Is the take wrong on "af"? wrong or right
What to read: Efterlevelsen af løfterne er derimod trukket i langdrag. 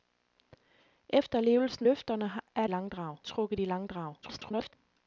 wrong